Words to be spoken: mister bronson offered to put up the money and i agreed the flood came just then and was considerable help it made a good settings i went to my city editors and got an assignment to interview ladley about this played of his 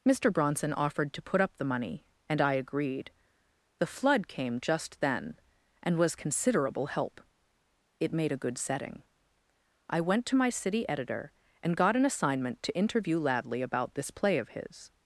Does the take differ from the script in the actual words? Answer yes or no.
yes